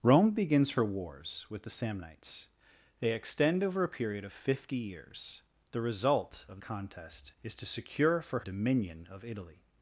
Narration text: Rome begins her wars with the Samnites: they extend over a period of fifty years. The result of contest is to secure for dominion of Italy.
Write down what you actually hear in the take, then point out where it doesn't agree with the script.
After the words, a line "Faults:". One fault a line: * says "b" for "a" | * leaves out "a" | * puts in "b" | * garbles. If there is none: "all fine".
Rome begins her wars with the Samnites: they extend over a period of fifty years. The result of contest is to secure for dominion of Italy.
Faults:
all fine